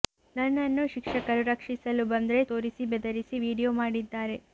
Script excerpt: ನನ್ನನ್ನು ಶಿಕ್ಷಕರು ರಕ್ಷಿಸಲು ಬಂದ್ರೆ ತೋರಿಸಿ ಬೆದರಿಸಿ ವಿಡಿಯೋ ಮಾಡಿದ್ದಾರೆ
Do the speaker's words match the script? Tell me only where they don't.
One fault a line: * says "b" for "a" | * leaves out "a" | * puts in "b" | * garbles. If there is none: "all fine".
all fine